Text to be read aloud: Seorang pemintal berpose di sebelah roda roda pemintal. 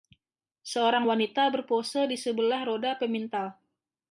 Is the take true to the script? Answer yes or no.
no